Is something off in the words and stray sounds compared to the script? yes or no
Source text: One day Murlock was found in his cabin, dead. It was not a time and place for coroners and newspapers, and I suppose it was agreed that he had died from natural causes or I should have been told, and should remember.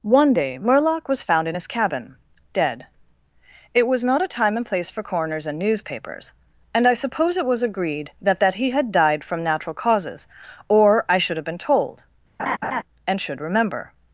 yes